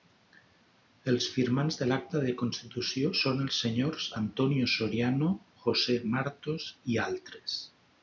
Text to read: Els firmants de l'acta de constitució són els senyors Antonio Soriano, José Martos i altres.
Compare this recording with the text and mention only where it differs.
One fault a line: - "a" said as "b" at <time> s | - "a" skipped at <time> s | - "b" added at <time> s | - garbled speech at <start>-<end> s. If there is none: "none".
none